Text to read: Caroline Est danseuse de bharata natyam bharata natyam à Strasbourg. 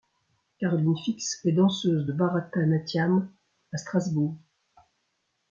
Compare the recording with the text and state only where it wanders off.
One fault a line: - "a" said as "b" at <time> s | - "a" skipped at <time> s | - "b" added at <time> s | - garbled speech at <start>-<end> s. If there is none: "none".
- "Fix" added at 1.0 s
- "bharata natyam" skipped at 3.3 s